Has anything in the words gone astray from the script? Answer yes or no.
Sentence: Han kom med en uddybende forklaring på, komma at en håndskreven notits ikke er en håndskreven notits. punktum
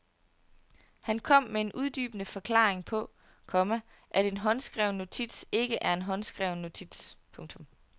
no